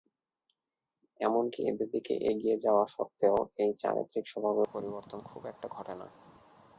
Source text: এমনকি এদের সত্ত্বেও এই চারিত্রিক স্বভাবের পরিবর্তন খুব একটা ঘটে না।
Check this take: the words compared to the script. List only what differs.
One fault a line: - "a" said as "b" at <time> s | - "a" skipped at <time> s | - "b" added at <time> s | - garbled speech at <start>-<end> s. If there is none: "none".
- "দিকে এগিয়ে যাওয়া" added at 1.9 s